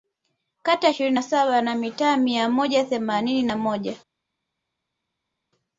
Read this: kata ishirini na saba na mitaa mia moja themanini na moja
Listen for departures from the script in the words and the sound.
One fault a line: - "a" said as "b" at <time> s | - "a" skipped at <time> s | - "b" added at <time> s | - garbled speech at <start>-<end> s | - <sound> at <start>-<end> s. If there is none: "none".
none